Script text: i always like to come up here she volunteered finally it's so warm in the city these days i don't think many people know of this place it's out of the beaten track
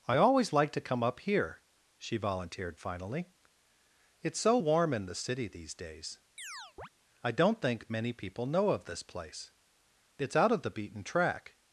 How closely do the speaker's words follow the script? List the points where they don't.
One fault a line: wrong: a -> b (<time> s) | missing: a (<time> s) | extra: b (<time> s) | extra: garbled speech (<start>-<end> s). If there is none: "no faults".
no faults